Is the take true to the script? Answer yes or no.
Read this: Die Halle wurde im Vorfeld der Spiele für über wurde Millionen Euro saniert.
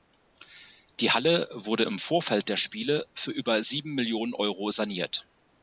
no